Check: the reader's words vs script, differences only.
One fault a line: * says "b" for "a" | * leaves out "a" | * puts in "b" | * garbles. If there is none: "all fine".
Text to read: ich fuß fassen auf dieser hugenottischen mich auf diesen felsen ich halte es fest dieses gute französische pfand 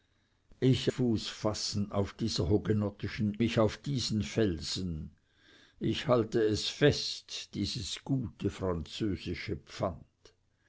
all fine